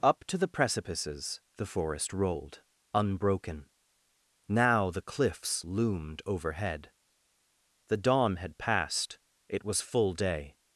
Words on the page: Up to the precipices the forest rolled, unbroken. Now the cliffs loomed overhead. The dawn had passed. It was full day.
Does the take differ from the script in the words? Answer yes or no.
no